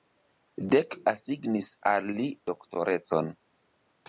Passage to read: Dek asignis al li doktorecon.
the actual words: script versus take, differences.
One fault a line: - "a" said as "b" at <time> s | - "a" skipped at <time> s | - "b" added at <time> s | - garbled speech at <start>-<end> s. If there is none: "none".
none